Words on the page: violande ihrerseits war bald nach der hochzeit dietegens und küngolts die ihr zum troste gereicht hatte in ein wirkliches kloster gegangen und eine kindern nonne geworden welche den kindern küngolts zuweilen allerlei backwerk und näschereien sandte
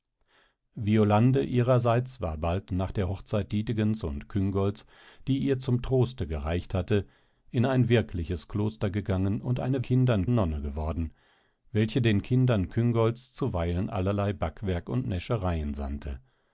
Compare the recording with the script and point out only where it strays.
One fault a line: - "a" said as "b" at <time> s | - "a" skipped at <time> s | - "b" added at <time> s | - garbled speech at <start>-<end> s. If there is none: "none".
none